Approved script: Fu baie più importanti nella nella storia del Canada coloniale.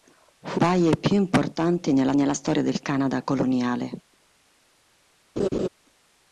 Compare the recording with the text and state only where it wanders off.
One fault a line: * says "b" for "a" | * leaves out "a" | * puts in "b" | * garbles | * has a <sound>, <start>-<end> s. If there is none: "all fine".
* has a laugh, 5.4-5.7 s